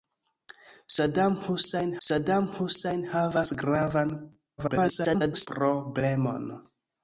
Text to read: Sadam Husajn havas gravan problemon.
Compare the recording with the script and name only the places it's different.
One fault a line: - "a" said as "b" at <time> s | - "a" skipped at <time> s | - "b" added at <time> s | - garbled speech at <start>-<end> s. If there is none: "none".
- "sadam Husajn" added at 2.1 s
- garbled speech at 4.6-5.5 s